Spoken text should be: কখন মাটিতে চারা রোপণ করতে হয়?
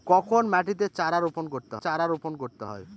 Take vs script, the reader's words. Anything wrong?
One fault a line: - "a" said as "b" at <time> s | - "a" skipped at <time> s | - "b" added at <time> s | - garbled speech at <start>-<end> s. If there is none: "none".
- "চারা রোপণ করতে" added at 1.8 s